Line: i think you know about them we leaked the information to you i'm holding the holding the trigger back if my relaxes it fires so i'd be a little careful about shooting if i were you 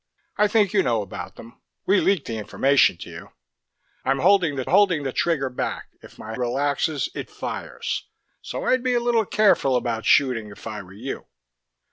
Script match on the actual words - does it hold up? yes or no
yes